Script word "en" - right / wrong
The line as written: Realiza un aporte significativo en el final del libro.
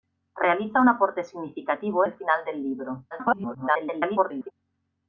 wrong